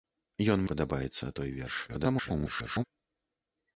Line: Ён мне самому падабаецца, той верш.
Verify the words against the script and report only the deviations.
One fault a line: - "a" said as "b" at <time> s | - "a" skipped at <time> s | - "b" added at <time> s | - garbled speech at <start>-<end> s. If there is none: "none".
- "мне самому" skipped at 0.6 s
- garbled speech at 1.9-2.8 s